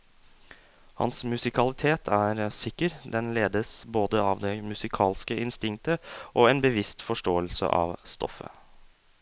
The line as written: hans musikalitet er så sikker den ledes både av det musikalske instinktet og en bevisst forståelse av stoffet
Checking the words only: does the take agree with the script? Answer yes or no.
no